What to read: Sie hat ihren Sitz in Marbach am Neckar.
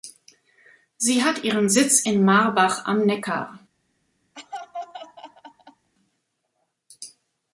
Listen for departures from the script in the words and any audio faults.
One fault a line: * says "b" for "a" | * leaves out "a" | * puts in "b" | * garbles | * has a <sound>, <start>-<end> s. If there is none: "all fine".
* has a laugh, 4.3-5.9 s